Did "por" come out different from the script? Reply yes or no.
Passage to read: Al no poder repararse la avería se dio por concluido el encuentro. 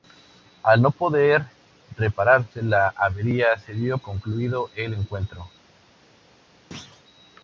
yes